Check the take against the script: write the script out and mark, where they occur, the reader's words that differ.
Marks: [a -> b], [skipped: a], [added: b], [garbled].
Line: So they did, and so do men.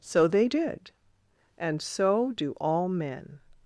So they did, and so do [added: all] men.